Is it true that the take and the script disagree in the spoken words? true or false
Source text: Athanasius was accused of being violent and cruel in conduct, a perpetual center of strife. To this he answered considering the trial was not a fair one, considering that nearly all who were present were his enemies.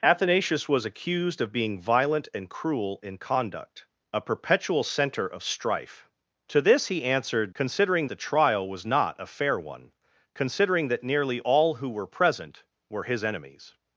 false